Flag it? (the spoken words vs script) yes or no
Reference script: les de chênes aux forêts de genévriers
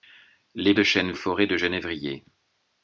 no